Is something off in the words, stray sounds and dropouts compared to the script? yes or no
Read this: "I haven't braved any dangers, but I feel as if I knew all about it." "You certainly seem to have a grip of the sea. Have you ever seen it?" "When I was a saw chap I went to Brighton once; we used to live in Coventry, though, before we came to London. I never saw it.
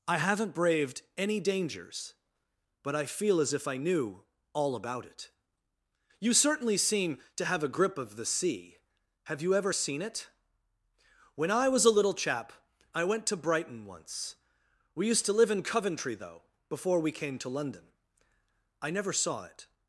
yes